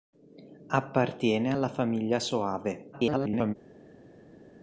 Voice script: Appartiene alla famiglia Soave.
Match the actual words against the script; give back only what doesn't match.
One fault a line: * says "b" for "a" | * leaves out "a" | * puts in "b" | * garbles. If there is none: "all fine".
* garbles